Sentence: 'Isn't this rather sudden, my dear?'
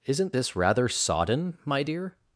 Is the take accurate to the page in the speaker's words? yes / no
no